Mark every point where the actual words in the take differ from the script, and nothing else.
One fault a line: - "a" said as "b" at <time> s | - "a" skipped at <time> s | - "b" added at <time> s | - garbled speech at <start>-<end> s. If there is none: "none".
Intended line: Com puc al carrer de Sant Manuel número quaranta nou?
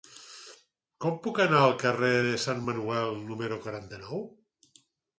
- "anar" added at 1.4 s